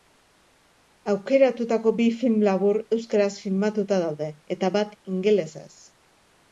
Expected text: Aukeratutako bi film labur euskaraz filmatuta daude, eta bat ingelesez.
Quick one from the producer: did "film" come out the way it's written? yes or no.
yes